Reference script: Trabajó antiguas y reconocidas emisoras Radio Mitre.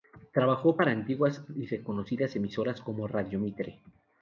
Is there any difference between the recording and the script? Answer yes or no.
yes